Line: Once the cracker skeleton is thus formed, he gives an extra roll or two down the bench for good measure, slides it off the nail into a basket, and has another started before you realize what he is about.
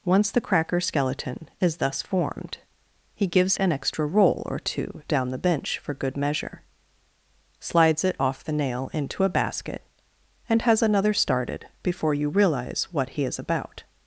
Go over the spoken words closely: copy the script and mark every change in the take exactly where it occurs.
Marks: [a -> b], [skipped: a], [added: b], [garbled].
Once the cracker skeleton is thus formed, he gives an extra roll or two down the bench for good measure, slides it off the nail into a basket, and has another started before you realize what he is about.